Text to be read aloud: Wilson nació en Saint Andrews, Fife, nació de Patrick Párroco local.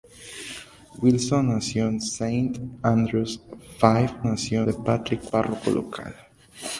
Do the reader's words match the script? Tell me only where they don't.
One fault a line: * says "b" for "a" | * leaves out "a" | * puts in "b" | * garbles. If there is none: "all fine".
all fine